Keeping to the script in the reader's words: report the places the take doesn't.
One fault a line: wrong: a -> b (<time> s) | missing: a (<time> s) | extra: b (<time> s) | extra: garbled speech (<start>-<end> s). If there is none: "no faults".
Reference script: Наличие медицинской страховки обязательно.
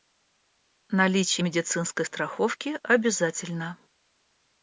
no faults